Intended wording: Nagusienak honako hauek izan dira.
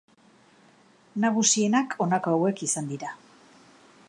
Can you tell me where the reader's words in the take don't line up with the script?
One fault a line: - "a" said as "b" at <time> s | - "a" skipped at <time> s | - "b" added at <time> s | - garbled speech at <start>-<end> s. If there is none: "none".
none